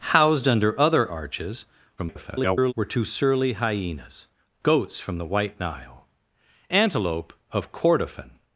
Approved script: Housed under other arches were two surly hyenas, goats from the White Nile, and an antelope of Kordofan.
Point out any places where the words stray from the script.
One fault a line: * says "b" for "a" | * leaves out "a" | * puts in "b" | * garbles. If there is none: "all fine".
* garbles
* leaves out "and an"